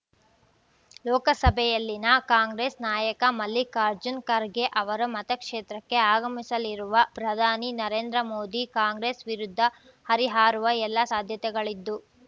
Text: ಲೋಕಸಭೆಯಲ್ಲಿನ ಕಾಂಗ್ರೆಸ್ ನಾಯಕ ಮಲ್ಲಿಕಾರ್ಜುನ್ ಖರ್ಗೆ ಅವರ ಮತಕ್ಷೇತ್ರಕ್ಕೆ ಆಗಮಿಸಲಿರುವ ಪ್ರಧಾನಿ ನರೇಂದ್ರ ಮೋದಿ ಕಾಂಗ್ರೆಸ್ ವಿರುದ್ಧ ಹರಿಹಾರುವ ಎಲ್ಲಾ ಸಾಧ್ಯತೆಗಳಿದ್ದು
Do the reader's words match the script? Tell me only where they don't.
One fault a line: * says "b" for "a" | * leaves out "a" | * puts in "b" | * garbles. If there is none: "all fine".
all fine